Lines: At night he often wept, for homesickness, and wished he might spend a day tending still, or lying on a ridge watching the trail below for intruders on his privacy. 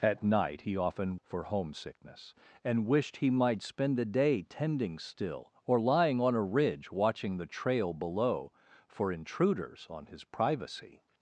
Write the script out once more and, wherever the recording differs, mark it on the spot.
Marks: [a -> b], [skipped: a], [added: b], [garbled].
At night he often [skipped: wept,] for homesickness, and wished he might spend a day tending still, or lying on a ridge watching the trail below for intruders on his privacy.